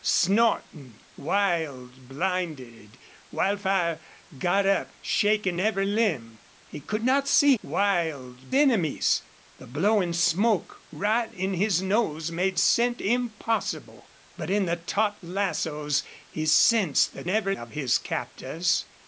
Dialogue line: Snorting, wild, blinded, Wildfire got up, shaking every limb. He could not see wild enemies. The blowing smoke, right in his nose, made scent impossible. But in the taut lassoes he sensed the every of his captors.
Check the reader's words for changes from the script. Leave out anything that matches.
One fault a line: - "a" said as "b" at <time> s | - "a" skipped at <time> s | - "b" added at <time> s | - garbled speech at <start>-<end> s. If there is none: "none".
none